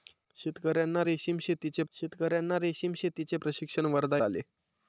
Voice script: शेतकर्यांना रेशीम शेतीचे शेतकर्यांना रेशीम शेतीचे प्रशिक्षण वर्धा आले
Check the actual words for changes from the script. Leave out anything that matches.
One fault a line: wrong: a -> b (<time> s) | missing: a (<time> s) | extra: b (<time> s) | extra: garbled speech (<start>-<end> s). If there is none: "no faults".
no faults